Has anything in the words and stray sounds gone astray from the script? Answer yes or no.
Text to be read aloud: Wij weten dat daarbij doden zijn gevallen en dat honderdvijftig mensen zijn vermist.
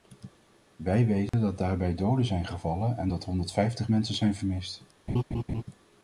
yes